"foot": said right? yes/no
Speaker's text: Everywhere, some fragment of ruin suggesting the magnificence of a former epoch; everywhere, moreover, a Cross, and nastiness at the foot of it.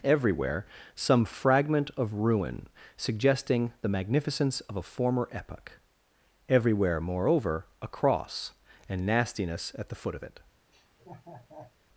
yes